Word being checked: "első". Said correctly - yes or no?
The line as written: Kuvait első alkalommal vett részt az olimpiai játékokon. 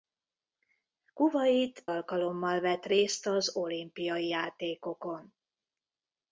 no